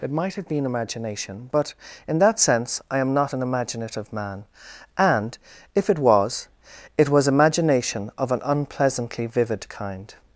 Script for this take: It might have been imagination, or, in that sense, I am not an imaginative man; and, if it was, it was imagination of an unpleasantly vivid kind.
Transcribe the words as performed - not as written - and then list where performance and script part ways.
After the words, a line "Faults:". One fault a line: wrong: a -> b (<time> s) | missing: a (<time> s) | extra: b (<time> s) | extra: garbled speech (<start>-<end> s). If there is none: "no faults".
It might have been imagination, but, in that sense, I am not an imaginative man; and, if it was, it was imagination of an unpleasantly vivid kind.
Faults:
wrong: or -> but (1.5 s)